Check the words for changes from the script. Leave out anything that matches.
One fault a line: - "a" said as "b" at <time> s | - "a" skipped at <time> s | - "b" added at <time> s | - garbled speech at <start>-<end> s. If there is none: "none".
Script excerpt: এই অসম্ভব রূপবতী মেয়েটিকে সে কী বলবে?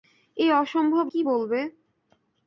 - "রূপবতী মেয়েটিকে সে" skipped at 1.1 s